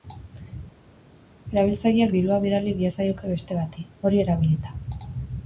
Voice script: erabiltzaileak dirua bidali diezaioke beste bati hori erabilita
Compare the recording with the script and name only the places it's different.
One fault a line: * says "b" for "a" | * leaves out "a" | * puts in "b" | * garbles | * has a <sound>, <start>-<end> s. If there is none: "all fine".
all fine